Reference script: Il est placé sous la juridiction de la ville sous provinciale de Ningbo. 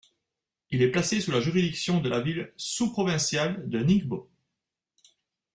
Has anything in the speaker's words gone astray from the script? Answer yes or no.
no